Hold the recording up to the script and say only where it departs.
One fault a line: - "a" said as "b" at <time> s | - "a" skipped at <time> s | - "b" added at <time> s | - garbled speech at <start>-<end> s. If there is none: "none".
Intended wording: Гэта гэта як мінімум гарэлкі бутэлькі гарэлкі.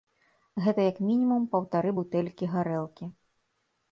- "гэта" skipped at 0.8 s
- "гарэлкі" said as "паўтары" at 1.5 s